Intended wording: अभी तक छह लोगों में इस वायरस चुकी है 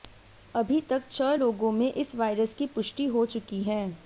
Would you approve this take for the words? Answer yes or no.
no